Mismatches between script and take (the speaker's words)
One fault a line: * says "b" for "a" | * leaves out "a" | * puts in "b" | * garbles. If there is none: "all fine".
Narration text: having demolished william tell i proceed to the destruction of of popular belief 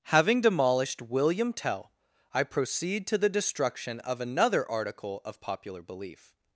* puts in "another article"